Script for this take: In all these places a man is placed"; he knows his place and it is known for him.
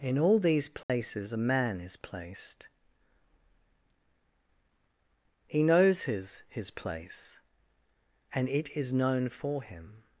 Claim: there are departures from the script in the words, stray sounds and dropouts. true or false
true